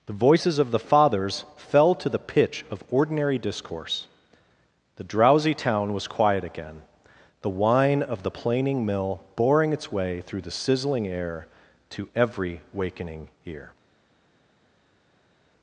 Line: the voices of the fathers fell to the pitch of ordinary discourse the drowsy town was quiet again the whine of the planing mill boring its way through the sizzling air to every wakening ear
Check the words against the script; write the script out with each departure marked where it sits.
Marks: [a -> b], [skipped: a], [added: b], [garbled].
the voices of the fathers fell to the pitch of ordinary discourse the drowsy town was quiet again the whine of the planing mill boring its way through the sizzling air to every wakening ear